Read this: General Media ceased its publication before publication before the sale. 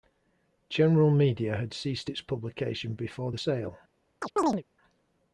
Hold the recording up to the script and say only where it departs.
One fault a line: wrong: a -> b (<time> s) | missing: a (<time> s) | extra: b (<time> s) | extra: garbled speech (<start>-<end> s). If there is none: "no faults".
extra: had (1.6 s)
missing: publication before (3.3 s)